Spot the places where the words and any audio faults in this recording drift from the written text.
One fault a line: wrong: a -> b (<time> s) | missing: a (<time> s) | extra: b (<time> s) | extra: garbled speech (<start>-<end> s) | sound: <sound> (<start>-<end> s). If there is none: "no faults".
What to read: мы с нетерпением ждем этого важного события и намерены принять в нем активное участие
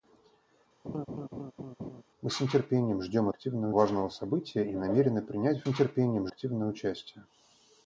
sound: laugh (0.8-2.0 s)
wrong: этого -> активное (3.3 s)
wrong: нем -> нетерпением (5.6 s)